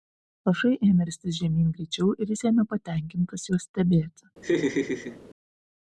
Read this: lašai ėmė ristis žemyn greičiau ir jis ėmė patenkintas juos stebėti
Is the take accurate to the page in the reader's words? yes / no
yes